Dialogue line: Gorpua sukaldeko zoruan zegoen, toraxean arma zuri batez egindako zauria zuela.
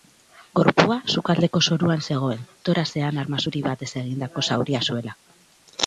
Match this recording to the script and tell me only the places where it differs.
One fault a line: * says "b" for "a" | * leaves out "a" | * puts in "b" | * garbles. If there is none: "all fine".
all fine